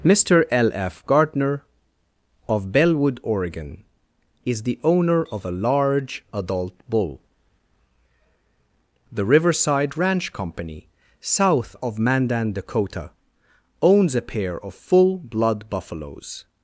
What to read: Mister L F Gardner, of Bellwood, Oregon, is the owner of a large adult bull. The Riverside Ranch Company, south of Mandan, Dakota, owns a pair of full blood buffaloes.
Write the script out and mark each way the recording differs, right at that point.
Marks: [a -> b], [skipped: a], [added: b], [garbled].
Mister L F Gardner, of Bellwood, Oregon, is the owner of a large adult bull. The Riverside Ranch Company, south of Mandan, Dakota, owns a pair of full blood buffaloes.